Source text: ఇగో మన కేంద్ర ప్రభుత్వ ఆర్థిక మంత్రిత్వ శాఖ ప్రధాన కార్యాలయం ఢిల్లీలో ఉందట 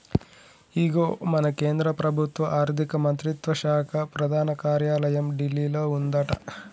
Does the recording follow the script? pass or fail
pass